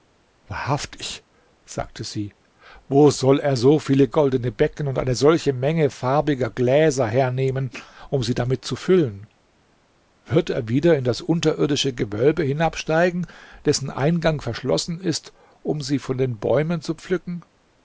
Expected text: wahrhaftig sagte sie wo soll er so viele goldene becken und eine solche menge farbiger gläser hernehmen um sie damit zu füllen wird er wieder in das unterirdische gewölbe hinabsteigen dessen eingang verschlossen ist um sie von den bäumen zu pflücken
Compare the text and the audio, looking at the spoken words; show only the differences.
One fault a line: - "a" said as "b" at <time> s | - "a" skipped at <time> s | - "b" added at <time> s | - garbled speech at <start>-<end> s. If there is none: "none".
none